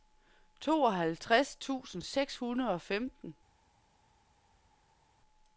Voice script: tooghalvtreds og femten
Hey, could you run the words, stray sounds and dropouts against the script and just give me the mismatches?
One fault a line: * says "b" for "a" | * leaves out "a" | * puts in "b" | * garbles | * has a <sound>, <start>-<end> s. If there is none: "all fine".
* puts in "tusind seks hundrede"